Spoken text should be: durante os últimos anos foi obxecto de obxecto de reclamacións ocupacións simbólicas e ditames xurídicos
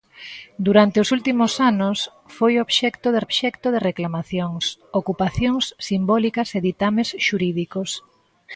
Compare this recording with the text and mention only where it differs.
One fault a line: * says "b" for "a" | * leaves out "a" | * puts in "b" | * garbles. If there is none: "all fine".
all fine